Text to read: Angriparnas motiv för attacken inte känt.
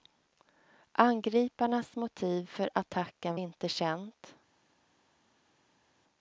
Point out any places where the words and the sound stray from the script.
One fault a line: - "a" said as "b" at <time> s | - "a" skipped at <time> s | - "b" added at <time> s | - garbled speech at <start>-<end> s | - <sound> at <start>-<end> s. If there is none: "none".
none